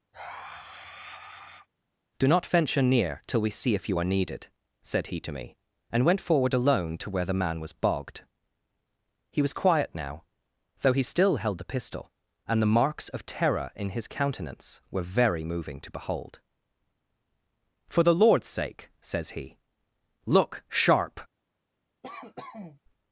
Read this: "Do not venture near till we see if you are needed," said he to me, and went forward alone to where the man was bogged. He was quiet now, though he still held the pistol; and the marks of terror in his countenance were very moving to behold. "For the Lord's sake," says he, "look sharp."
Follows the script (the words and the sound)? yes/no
no